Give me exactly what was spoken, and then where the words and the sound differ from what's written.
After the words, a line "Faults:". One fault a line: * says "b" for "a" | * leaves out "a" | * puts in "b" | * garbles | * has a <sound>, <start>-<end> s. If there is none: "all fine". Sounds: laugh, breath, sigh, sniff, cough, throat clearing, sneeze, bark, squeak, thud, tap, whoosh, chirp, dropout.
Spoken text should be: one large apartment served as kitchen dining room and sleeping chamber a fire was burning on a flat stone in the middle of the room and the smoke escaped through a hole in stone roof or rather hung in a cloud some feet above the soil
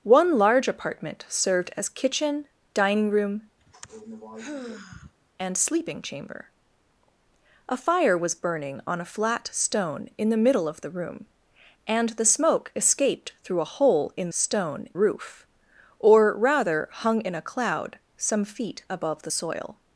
one large apartment served as kitchen dining room and sleeping chamber a fire was burning on a flat stone in the middle of the room and the smoke escaped through a hole in stone roof or rather hung in a cloud some feet above the soil
Faults:
* has a sigh, 3.6-5.1 s